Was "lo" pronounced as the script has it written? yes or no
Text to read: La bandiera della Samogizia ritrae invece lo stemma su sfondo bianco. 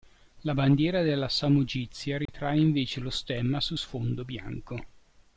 yes